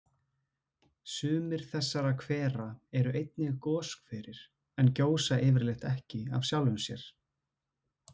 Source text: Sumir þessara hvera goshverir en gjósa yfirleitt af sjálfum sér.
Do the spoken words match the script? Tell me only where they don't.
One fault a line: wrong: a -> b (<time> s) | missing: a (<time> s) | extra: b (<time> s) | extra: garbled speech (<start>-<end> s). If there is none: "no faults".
extra: eru einnig (3.0 s)
extra: ekki (5.9 s)